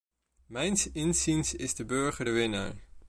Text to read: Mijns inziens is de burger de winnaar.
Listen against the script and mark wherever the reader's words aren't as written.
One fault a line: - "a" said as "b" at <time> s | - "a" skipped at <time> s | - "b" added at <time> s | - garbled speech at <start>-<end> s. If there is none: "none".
none